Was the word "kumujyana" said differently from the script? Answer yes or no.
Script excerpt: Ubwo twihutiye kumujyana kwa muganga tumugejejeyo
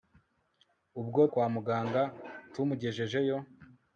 yes